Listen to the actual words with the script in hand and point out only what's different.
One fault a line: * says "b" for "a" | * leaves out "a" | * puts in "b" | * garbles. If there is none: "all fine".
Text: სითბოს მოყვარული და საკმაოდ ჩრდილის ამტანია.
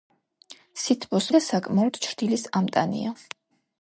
* leaves out "მოყვარული"